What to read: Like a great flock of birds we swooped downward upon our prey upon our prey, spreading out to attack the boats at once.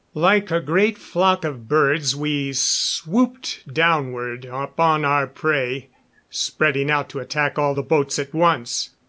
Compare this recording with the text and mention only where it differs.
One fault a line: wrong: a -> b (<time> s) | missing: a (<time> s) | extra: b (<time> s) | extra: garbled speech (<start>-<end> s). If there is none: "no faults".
missing: upon our prey (5.9 s)
extra: all (7.6 s)